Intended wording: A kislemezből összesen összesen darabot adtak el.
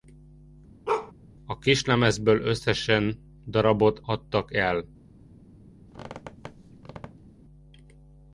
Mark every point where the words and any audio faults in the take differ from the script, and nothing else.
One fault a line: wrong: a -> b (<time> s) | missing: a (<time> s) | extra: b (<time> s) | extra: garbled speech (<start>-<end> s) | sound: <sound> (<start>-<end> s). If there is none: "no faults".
sound: bark (0.9-1.1 s)
missing: összesen (3.2 s)
sound: squeak (5.9-7.4 s)